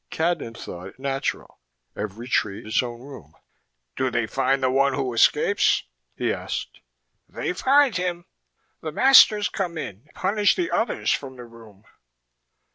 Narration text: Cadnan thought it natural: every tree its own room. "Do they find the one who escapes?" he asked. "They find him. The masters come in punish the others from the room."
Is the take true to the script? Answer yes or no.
yes